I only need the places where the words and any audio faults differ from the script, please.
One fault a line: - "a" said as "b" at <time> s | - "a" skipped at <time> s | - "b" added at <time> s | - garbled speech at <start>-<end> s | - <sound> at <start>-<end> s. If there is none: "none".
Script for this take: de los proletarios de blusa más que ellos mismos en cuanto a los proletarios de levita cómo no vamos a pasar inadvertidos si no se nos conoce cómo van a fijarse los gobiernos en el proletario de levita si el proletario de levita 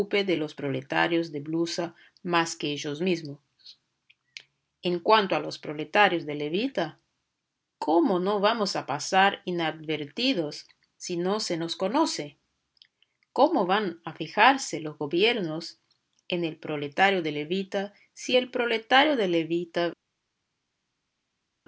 none